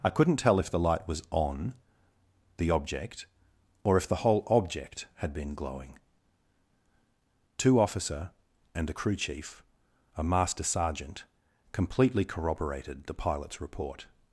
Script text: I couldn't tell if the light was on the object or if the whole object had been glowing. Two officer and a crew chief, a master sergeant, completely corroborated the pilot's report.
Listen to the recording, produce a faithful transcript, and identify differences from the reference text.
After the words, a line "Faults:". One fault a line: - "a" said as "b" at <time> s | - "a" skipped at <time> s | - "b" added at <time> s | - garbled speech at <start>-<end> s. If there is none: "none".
I couldn't tell if the light was on the object or if the whole object had been glowing. Two officer and a crew chief, a master sergeant, completely corroborated the pilot's report.
Faults:
none